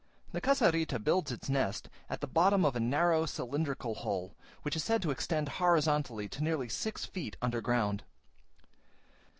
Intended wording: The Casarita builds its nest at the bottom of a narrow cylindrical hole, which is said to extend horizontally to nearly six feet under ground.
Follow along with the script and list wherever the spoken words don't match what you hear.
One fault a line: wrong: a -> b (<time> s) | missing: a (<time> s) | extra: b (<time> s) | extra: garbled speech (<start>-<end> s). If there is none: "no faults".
no faults